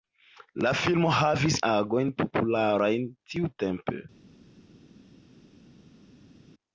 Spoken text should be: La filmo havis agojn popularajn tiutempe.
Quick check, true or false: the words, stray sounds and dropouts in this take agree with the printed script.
true